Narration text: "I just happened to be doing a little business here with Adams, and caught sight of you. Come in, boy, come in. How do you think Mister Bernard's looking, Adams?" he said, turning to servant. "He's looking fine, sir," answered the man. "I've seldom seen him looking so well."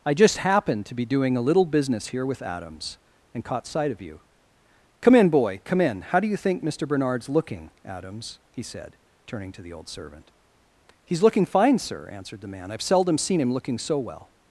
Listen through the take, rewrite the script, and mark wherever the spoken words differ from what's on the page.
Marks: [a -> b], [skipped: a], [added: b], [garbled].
"I just happened to be doing a little business here with Adams, and caught sight of you. Come in, boy, come in. How do you think Mister Bernard's looking, Adams?" he said, turning to [added: the old] servant. "He's looking fine, sir," answered the man. "I've seldom seen him looking so well."